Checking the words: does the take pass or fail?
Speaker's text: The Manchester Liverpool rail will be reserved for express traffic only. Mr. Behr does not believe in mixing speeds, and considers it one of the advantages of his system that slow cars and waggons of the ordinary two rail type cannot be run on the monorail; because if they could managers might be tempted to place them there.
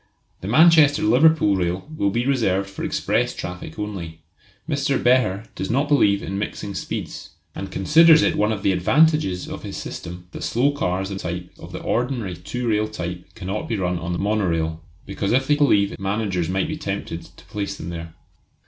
fail